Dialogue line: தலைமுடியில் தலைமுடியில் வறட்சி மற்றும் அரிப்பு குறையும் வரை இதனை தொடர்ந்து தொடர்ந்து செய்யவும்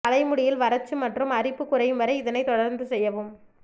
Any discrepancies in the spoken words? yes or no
yes